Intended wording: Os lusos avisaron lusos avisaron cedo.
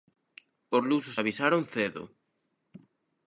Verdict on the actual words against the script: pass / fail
fail